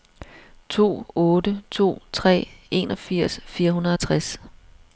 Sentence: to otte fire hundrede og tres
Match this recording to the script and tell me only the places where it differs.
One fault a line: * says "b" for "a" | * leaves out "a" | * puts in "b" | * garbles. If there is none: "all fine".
* puts in "to tre enogfirs"